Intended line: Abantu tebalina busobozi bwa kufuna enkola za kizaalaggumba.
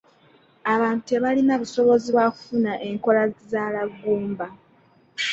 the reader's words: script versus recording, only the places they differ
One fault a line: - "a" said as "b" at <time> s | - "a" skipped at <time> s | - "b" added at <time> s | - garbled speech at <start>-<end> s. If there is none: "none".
- "za" skipped at 3.2 s